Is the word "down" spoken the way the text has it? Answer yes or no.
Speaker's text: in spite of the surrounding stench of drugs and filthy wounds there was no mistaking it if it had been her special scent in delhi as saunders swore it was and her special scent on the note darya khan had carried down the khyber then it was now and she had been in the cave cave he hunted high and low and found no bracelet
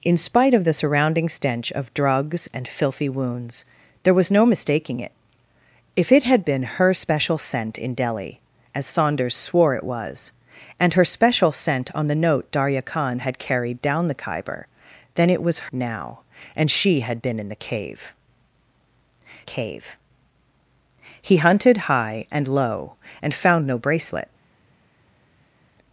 yes